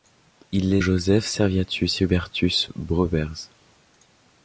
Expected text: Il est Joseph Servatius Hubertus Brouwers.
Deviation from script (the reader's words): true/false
false